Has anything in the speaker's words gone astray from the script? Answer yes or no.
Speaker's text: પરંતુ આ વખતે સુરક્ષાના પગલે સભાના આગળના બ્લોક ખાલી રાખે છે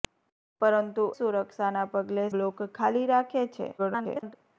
yes